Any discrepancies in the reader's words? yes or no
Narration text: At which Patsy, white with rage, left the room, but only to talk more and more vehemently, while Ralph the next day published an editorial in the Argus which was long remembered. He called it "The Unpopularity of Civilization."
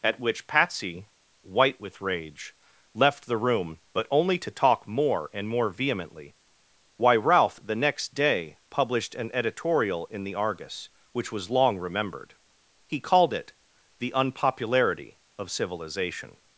yes